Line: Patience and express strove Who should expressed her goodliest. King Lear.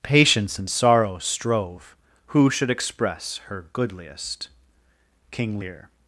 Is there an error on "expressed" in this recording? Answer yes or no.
yes